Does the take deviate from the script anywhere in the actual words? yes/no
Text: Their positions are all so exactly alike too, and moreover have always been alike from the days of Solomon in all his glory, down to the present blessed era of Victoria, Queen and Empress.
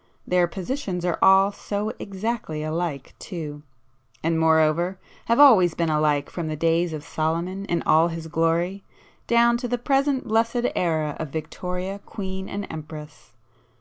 no